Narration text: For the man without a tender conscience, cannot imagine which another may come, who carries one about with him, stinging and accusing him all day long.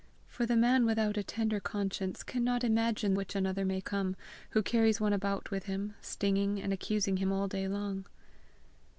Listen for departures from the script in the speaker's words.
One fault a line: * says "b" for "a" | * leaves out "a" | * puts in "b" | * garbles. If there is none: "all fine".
all fine